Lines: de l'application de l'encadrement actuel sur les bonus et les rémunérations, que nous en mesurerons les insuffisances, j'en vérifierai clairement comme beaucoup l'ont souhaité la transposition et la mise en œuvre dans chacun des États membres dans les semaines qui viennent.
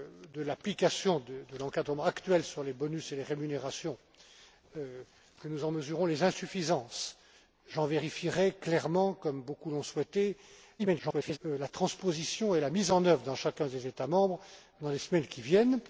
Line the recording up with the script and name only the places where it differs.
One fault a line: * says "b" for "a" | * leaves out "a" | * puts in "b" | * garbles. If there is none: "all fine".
* garbles